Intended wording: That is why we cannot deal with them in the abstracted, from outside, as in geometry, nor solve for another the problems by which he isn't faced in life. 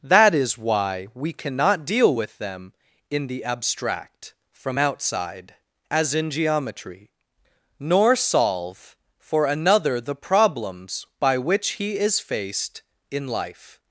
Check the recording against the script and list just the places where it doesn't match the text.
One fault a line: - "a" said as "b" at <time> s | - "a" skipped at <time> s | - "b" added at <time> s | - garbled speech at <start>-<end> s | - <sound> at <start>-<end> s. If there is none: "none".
- "abstracted" said as "abstract" at 3.4 s
- "isn't" said as "is" at 12.0 s